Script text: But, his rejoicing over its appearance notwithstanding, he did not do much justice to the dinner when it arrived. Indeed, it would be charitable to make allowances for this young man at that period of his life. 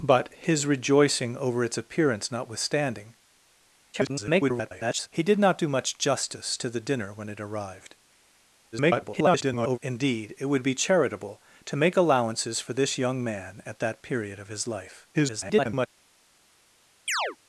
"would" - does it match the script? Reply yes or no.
yes